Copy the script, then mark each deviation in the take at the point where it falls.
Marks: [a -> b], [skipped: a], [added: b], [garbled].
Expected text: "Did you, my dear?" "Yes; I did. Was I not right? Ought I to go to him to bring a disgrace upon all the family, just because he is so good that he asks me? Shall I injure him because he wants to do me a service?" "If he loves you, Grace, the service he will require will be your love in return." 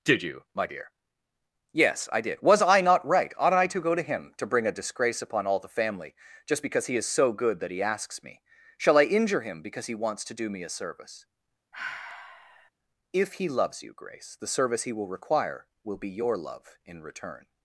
"Did you, my dear?" "Yes; I did. Was I not right? Ought I to go to him to bring a disgrace upon all the family, just because he is so good that he asks me? Shall I injure him because he wants to do me a service?" "If he loves you, Grace, the service he will require will be your love in return."